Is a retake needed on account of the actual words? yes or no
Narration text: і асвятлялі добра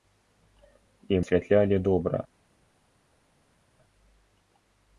no